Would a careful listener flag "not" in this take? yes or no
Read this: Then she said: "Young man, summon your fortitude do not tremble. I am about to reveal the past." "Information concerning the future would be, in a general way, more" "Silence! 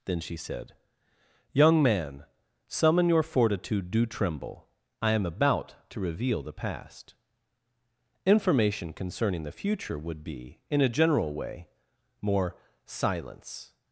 yes